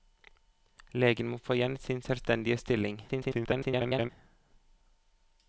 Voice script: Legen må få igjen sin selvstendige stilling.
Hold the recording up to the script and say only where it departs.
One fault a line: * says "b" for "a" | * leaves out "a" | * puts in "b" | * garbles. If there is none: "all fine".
* garbles